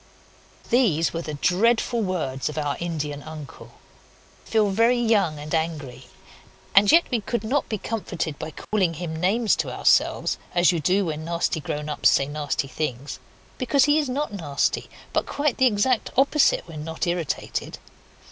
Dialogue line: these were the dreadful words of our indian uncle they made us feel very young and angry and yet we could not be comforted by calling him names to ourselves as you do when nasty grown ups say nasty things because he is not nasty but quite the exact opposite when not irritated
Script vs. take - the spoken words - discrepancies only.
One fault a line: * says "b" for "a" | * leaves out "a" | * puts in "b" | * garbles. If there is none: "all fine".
* leaves out "they made us"